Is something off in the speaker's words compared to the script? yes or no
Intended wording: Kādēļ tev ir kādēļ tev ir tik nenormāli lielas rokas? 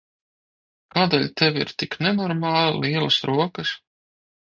yes